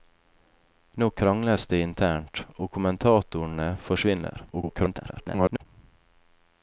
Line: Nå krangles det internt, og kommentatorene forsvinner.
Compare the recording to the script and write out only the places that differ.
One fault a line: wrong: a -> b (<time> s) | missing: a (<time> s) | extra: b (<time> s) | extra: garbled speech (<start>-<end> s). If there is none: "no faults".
extra: garbled speech (4.5-5.7 s)